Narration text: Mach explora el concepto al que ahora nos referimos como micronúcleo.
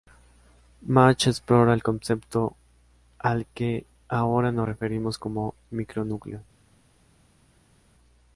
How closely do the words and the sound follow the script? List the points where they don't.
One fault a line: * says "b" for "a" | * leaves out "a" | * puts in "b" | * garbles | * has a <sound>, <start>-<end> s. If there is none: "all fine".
all fine